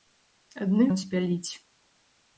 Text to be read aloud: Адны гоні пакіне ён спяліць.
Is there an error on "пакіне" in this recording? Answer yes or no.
yes